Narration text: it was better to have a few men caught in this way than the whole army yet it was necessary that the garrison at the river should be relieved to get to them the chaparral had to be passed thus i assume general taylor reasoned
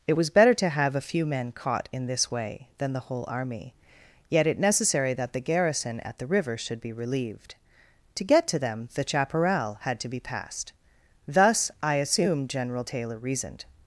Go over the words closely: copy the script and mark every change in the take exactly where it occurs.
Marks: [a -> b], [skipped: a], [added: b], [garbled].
it was better to have a few men caught in this way than the whole army yet it [skipped: was] necessary that the garrison at the river should be relieved to get to them the chaparral had to be passed thus i assume general taylor reasoned